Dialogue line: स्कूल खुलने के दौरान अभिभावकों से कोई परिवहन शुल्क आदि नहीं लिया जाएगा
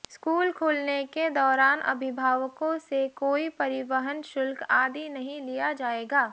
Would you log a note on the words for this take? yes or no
no